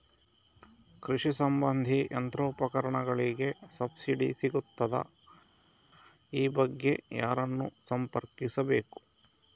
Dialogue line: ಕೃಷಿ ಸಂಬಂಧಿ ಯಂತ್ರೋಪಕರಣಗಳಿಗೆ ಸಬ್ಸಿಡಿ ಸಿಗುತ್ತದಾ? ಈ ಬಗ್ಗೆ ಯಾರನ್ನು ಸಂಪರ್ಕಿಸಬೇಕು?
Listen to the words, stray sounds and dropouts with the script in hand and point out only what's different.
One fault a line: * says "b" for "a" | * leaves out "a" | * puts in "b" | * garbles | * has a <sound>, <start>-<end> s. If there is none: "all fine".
all fine